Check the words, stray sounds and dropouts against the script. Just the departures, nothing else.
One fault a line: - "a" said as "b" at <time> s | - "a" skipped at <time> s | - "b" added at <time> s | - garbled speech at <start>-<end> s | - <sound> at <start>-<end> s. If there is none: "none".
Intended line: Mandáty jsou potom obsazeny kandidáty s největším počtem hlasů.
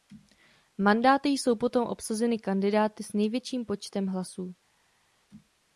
none